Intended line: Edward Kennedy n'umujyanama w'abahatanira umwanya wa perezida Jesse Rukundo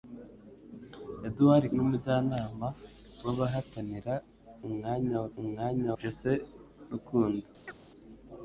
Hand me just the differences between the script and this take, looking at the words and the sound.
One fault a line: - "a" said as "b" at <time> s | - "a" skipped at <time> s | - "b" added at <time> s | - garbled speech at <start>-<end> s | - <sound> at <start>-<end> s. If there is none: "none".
- "Kennedy" skipped at 1.6 s
- "perezida" said as "umwanya" at 5.4 s
- chirp at 7.7-7.8 s